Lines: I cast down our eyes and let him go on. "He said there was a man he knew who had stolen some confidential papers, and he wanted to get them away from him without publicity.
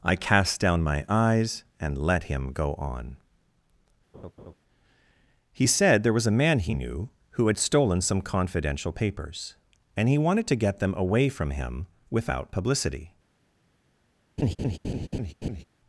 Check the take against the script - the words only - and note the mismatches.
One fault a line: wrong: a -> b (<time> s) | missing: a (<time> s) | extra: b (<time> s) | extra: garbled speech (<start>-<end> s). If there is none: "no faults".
wrong: our -> my (0.8 s)